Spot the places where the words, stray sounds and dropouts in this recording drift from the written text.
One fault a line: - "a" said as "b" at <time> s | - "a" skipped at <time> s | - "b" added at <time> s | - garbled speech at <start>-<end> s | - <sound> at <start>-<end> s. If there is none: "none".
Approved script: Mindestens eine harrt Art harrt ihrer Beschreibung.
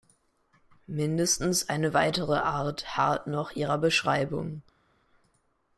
- "harrt" said as "weitere" at 1.9 s
- "noch" added at 3.3 s